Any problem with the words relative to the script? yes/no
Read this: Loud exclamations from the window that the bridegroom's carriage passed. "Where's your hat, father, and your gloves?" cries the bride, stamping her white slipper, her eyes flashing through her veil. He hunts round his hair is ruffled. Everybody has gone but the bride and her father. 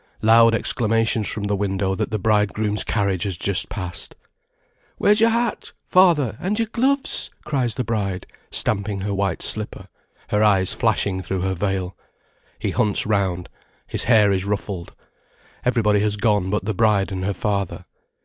yes